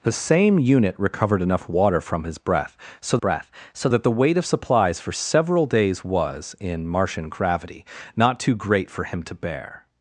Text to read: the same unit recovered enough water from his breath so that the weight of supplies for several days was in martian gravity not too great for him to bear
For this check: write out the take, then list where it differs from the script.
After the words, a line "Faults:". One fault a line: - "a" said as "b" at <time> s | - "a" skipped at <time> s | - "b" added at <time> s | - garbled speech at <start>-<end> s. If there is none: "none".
the same unit recovered enough water from his breath so breath so that the weight of supplies for several days was in martian gravity not too great for him to bear
Faults:
- "breath so" added at 3.2 s